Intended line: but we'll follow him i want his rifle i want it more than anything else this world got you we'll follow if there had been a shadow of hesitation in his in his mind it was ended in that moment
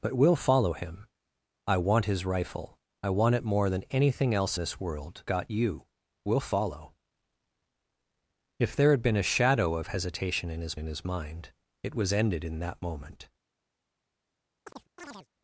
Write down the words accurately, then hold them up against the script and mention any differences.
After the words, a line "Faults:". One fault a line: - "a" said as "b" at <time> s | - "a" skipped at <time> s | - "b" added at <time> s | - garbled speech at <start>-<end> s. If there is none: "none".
but we'll follow him i want his rifle i want it more than anything else this world got you we'll follow if there had been a shadow of hesitation in his in his mind it was ended in that moment
Faults:
none